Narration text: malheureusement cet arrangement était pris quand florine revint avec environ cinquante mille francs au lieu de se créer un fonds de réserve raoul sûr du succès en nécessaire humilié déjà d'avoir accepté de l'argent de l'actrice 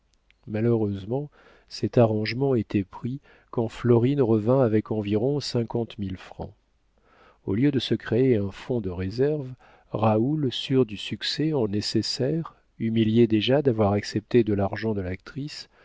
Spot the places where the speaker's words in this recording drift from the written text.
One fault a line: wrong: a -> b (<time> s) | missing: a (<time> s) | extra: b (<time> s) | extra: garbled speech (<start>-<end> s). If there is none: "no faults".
no faults